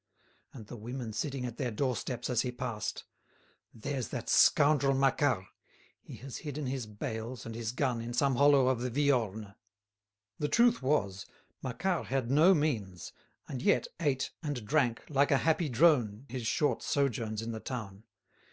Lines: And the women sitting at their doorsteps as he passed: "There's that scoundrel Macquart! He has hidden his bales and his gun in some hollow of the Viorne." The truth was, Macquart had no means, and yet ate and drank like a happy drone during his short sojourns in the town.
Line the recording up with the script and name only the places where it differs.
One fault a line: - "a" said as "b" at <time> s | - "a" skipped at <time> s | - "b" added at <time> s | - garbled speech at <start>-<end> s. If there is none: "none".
- "during" skipped at 16.3 s